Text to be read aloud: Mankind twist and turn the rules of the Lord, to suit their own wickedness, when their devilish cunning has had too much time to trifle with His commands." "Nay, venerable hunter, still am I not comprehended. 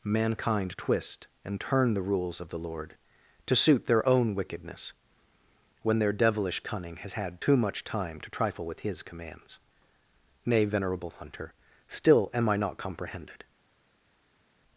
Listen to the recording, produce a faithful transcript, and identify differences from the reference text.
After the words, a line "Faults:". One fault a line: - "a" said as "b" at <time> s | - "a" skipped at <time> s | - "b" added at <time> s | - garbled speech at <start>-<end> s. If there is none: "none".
Mankind twist and turn the rules of the Lord, to suit their own wickedness, when their devilish cunning has had too much time to trifle with His commands." "Nay, venerable hunter, still am I not comprehended.
Faults:
none